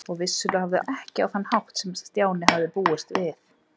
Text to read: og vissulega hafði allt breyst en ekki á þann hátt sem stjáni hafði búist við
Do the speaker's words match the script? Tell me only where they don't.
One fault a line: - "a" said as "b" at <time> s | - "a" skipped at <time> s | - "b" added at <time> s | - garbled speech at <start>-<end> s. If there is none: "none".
- "allt breyst" skipped at 0.8 s